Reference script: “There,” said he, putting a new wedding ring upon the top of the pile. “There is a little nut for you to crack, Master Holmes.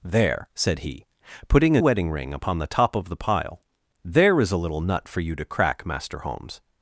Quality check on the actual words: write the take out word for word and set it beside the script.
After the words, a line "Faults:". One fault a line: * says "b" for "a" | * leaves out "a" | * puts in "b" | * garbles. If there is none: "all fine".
“There,” said he, putting a wedding ring upon the top of the pile. “There is a little nut for you to crack, Master Holmes.
Faults:
* leaves out "new"